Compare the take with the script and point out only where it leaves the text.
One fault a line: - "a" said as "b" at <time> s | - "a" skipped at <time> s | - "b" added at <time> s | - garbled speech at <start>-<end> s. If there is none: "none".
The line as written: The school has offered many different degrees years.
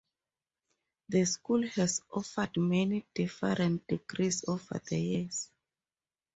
- "over the" added at 4.5 s